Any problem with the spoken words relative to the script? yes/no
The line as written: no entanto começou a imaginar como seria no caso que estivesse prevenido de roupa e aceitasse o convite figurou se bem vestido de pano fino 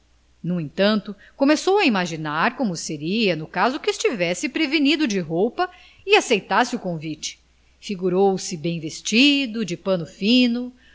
no